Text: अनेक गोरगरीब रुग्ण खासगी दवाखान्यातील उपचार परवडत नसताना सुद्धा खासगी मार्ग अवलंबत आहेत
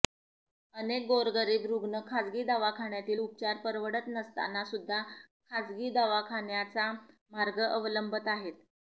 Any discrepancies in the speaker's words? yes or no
yes